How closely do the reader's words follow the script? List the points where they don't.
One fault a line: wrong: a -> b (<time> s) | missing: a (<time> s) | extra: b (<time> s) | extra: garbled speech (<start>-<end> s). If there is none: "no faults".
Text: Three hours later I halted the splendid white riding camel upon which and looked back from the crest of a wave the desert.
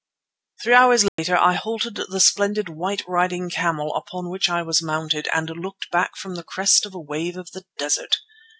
extra: I was mounted (4.5 s)
extra: of (7.4 s)